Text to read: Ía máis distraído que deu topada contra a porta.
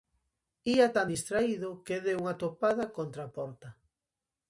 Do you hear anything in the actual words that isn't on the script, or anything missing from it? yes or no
yes